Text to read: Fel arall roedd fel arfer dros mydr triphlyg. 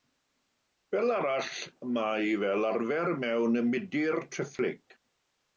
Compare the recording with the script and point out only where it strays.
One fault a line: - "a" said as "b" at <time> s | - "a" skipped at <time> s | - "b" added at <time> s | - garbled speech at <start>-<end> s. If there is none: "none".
- "roedd" said as "mae" at 2.0 s
- "dros" said as "mewn" at 3.2 s